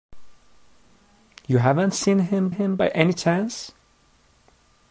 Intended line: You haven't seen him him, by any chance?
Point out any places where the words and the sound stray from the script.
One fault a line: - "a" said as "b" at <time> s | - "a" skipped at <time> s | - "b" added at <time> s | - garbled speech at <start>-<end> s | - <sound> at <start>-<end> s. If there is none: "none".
none